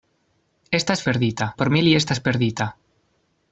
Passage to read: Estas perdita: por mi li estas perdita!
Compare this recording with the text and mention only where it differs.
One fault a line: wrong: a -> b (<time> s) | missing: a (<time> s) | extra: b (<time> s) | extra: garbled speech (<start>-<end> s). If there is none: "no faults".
no faults